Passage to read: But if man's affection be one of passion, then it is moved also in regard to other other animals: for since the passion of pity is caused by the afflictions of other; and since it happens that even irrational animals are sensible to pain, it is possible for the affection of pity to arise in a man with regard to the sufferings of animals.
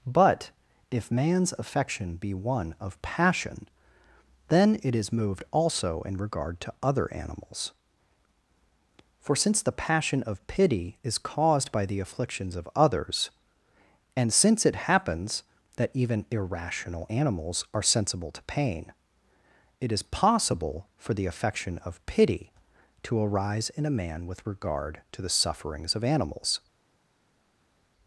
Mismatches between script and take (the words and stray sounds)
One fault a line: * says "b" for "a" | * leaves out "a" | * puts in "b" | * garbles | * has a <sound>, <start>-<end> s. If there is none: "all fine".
* leaves out "other"
* says "others" for "other"